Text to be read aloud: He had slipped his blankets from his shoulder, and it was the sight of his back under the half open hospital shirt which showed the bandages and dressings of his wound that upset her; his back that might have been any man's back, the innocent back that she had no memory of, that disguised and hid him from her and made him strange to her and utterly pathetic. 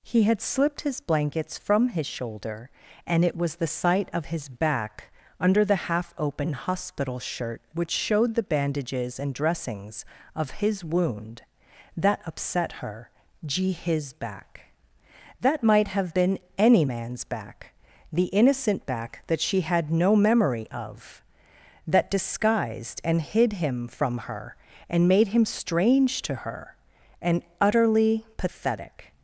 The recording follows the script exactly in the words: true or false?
false